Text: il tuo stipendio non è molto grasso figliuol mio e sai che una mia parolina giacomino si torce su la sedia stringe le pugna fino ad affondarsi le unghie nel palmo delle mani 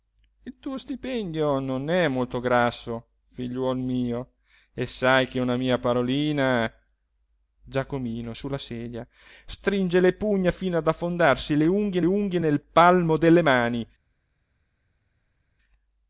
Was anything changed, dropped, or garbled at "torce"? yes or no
yes